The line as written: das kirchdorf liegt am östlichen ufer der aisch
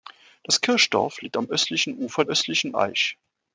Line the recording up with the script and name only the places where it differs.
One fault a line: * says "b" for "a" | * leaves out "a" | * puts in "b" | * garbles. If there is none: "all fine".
* says "östlichen" for "der"